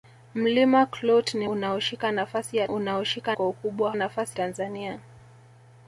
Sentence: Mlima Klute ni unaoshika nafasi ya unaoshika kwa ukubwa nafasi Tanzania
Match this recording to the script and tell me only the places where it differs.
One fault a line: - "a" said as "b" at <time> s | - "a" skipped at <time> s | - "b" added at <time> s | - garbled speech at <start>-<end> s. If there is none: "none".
none